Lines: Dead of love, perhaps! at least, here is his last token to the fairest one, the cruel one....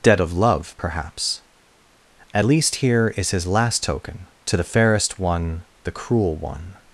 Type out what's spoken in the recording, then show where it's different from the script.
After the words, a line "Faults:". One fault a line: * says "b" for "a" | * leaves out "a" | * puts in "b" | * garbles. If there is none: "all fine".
Dead of love, perhaps! at least, here is his last token to the fairest one, the cruel one....
Faults:
all fine